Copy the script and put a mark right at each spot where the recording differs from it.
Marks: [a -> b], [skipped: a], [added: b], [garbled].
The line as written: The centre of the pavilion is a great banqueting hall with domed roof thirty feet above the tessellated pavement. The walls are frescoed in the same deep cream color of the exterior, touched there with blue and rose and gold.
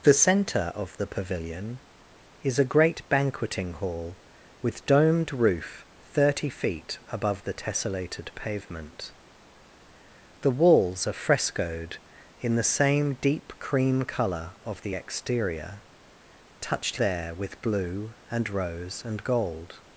The centre of the pavilion is a great banqueting hall with domed roof thirty feet above the tessellated pavement. The walls are frescoed in the same deep cream color of the exterior, touched there with blue and rose and gold.